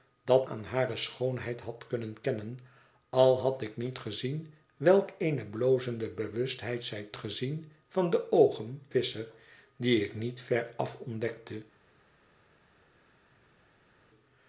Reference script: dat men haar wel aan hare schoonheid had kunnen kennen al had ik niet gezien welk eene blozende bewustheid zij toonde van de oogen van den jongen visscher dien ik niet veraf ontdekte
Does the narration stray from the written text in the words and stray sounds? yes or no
yes